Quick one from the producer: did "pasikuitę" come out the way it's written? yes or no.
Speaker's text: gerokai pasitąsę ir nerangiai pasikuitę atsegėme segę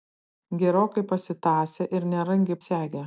no